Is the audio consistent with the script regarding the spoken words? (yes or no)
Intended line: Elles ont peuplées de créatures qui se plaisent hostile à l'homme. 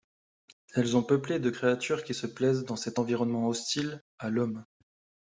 no